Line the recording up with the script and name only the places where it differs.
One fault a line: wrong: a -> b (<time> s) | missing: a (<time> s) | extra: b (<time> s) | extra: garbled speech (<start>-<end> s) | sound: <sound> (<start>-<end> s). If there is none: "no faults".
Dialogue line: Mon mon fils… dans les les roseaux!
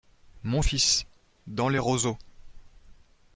missing: mon (0.6 s)
missing: les (1.8 s)